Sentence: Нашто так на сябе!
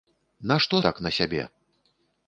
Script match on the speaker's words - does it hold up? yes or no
yes